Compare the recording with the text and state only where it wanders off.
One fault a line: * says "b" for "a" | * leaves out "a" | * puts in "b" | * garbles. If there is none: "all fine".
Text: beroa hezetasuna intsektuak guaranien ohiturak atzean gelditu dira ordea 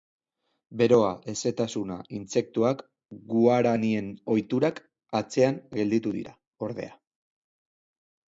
all fine